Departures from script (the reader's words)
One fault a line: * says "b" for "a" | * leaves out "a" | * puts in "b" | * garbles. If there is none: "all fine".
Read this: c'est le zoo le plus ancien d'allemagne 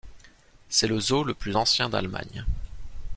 all fine